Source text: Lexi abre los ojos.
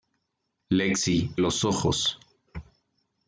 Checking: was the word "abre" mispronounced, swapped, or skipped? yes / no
yes